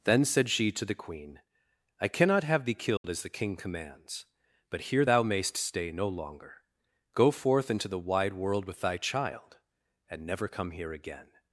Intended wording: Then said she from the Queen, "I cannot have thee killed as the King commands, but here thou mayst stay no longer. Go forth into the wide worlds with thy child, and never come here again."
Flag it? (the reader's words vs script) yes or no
yes